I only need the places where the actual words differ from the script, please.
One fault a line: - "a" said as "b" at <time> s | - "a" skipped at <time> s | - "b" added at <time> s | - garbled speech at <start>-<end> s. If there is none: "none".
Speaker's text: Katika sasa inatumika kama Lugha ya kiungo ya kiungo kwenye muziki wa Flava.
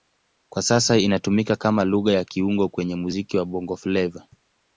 - "Katika" said as "Kwa" at 0.5 s
- "ya kiungo" skipped at 2.7 s
- "Bongo" added at 3.5 s